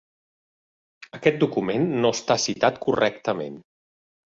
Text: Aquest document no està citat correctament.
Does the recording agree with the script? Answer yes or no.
yes